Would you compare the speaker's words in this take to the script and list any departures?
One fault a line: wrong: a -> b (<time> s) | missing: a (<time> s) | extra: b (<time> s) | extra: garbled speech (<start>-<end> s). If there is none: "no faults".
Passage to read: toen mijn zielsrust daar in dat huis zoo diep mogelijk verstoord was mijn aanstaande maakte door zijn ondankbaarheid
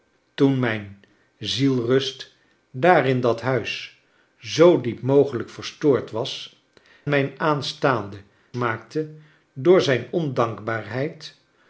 no faults